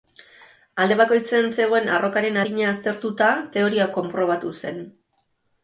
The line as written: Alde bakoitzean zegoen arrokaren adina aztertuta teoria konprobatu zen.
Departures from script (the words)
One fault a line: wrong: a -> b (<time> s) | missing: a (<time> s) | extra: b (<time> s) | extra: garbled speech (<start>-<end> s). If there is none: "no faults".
no faults